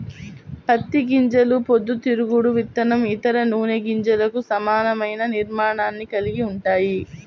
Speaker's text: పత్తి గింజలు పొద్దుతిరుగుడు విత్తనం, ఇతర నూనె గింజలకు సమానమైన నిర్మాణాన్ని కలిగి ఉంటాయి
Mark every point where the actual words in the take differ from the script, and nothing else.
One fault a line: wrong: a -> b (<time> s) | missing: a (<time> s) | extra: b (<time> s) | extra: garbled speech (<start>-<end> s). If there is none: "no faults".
no faults